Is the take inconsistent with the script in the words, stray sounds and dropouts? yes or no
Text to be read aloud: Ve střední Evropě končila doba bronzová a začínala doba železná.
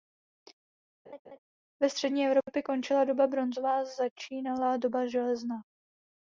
yes